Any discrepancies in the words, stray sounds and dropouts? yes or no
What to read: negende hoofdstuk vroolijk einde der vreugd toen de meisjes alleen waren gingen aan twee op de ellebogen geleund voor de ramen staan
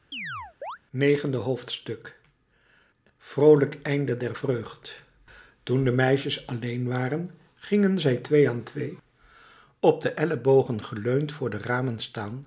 yes